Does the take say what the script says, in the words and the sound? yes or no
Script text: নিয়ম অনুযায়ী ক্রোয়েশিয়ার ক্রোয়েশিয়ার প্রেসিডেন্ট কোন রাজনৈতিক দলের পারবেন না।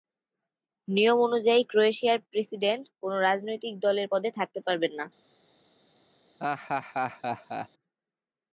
no